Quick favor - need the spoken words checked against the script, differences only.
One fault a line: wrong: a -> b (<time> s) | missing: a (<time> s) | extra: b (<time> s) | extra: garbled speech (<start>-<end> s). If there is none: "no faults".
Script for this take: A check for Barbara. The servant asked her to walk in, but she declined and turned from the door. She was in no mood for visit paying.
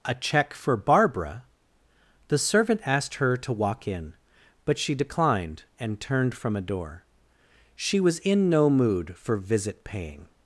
wrong: the -> a (6.5 s)